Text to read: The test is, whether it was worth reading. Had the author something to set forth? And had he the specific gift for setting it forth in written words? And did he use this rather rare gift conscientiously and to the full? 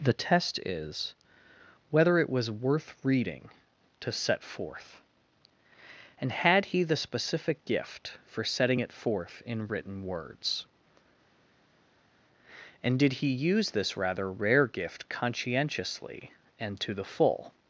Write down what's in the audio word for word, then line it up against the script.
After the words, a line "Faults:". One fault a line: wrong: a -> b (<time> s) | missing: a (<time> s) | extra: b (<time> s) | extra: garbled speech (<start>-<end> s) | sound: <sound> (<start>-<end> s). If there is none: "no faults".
The test is, whether it was worth reading. to set forth? And had he the specific gift for setting it forth in written words? And did he use this rather rare gift conscientiously and to the full?
Faults:
missing: Had the author something (3.5 s)